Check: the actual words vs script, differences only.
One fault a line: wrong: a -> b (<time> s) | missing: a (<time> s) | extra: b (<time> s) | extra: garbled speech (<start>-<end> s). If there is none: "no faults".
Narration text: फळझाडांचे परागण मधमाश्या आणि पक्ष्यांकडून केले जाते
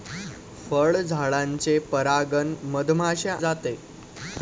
missing: आणि पक्ष्यांकडून केले (3.4 s)